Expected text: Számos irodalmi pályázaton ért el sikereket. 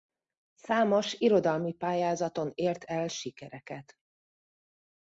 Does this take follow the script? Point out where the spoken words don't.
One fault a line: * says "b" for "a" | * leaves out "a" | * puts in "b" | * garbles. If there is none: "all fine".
all fine